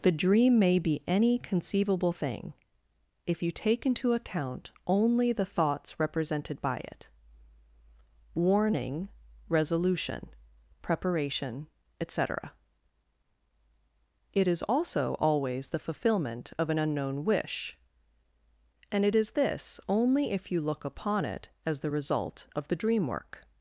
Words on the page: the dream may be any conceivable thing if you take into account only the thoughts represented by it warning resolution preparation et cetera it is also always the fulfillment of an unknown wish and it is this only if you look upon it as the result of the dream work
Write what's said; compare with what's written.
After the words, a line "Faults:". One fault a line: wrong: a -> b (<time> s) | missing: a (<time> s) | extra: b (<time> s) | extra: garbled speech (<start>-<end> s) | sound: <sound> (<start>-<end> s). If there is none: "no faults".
the dream may be any conceivable thing if you take into account only the thoughts represented by it warning resolution preparation et cetera it is also always the fulfillment of an unknown wish and it is this only if you look upon it as the result of the dream work
Faults:
no faults